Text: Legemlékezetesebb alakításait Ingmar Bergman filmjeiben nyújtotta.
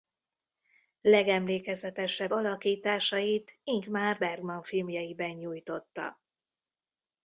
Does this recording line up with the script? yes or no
yes